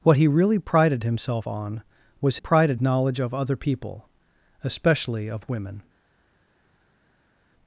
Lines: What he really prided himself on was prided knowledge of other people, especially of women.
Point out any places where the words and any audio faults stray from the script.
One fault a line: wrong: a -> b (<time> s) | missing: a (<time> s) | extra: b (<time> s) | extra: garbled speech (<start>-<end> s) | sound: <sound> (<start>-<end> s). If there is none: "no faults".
no faults